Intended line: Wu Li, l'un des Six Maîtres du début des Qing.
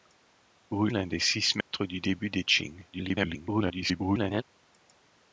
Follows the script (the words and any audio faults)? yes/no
no